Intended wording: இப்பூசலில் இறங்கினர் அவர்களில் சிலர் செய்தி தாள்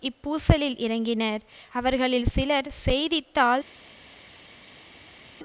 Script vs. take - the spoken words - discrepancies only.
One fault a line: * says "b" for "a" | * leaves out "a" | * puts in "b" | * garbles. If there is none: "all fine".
all fine